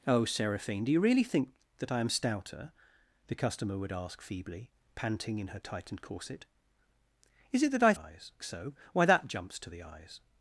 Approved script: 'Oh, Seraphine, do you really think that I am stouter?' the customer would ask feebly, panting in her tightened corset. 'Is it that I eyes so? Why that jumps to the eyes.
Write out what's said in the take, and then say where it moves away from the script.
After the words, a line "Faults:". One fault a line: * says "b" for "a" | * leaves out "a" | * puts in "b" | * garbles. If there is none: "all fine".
'Oh, Seraphine, do you really think that I am stouter?' the customer would ask feebly, panting in her tightened corset. 'Is it that I eyes so? Why that jumps to the eyes.
Faults:
all fine